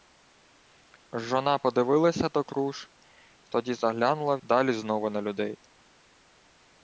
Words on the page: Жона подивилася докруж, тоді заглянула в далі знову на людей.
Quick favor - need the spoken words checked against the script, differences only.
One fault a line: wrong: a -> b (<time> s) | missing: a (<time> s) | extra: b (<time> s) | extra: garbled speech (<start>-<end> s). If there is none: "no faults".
no faults